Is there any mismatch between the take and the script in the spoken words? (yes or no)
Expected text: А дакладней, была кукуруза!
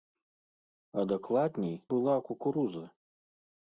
no